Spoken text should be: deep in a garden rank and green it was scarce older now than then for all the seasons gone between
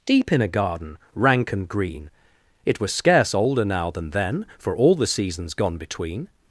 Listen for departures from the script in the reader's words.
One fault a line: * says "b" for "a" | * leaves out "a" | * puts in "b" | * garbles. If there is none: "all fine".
all fine